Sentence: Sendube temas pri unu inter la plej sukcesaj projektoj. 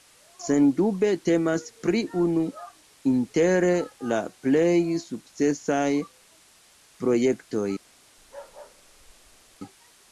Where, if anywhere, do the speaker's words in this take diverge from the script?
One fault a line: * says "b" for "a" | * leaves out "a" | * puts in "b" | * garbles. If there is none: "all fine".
all fine